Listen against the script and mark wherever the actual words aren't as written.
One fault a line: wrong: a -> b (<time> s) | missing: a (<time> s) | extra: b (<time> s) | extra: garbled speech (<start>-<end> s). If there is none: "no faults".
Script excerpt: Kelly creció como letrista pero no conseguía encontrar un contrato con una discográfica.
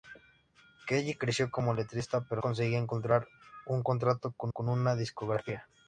missing: no (2.4 s)
extra: con (4.5 s)